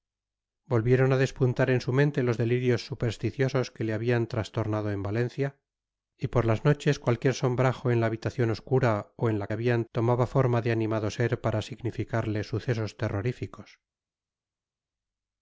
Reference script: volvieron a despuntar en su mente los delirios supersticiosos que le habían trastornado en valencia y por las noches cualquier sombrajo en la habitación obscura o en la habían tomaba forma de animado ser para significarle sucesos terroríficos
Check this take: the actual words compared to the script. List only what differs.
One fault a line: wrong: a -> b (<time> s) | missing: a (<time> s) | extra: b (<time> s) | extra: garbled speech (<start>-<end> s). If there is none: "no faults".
no faults